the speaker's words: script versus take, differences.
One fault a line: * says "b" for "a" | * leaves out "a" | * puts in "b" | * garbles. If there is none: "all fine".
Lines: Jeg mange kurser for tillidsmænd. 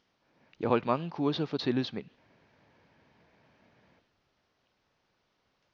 * puts in "holdt"